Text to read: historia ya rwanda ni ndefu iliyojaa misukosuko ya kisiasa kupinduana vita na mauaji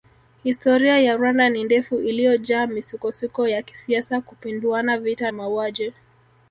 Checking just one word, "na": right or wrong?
wrong